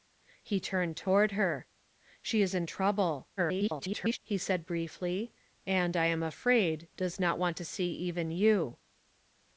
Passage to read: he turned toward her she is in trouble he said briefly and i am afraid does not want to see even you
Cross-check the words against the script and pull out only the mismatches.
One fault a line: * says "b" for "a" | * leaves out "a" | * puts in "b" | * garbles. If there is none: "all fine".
* garbles